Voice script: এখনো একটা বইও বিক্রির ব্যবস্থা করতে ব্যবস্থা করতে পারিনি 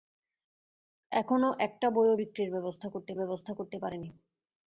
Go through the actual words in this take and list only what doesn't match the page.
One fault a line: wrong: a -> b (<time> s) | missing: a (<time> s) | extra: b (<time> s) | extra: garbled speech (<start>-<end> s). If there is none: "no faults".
no faults